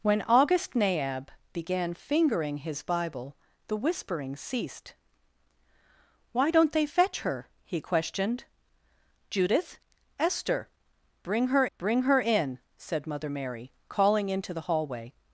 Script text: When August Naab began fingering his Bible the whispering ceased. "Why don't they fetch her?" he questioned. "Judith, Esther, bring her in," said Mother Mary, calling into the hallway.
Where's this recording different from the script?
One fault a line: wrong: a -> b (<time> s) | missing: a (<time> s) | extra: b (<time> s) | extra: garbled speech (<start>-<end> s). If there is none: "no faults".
extra: bring her (11.8 s)